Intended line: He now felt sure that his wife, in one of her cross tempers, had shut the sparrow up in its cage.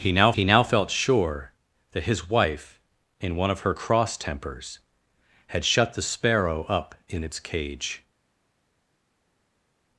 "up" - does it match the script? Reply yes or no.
yes